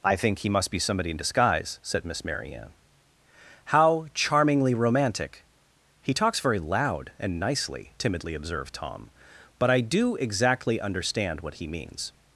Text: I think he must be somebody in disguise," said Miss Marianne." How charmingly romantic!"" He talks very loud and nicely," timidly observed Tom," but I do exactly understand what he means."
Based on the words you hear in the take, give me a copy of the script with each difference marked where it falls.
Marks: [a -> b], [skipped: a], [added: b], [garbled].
I think he must be somebody in disguise," said Miss Marianne." How charmingly romantic!"" He talks very loud and nicely," timidly observed Tom," but I do exactly understand what he means."